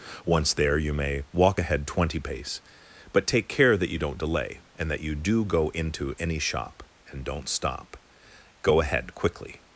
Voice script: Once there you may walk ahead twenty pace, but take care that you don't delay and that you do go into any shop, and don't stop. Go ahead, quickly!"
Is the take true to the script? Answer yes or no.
yes